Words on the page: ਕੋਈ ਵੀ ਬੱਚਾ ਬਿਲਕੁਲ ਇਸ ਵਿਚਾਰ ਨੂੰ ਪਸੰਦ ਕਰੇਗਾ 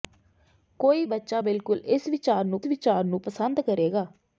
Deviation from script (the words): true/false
true